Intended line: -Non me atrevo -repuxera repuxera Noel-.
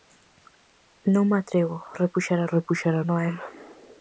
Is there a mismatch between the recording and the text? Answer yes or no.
no